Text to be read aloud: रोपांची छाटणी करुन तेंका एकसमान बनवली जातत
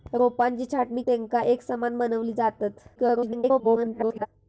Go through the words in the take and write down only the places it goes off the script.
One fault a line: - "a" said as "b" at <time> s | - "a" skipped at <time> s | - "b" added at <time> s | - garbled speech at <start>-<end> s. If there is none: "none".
- "करुन" skipped at 1.0 s
- garbled speech at 3.0-4.3 s